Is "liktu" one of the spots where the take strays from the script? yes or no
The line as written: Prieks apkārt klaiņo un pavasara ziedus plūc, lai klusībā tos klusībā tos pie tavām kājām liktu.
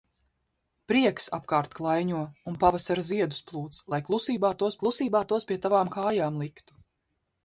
no